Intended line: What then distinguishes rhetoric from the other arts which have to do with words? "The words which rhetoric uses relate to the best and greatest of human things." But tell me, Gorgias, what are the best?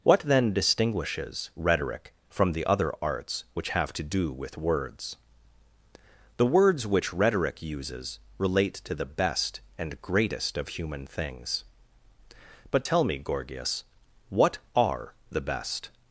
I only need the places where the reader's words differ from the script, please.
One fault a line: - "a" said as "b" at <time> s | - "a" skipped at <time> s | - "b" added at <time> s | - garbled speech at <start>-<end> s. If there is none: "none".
none